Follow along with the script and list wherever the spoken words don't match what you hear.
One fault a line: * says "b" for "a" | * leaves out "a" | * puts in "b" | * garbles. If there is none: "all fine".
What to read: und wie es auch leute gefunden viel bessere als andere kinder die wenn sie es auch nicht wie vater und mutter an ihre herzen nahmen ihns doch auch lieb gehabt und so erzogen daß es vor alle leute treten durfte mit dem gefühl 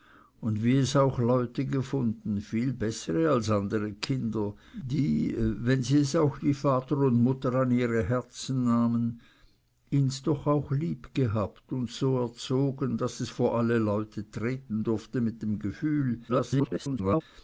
* leaves out "nicht"
* garbles